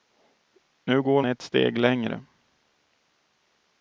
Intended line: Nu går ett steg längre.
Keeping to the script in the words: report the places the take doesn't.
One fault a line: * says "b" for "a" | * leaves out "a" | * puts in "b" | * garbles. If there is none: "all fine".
all fine